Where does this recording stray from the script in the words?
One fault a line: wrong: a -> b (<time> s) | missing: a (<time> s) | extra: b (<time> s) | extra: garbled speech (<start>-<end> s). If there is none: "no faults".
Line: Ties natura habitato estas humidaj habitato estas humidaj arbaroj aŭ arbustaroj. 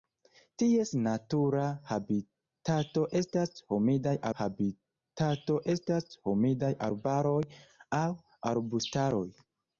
no faults